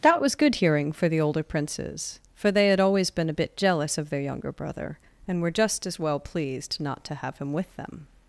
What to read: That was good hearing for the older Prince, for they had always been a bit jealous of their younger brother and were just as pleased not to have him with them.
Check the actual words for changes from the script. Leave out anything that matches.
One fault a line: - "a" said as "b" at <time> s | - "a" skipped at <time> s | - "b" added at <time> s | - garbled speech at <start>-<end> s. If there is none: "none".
- "Prince" said as "Princes" at 1.4 s
- "well" added at 6.0 s